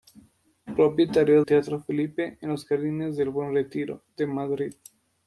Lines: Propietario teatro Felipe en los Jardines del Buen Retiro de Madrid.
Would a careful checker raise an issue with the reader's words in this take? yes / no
no